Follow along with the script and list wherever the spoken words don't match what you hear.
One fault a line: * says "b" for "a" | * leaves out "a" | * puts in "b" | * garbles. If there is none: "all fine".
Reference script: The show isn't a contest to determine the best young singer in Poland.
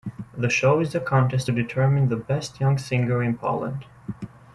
* says "is" for "isn't"